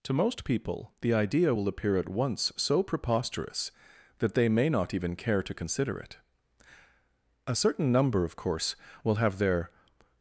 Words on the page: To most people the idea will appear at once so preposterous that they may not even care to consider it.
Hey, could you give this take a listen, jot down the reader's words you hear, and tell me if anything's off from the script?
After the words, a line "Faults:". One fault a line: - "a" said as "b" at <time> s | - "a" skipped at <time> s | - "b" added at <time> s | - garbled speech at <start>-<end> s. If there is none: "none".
To most people the idea will appear at once so preposterous that they may not even care to consider it. A certain number, of course, will have their
Faults:
- "A certain number of course will have their" added at 7.5 s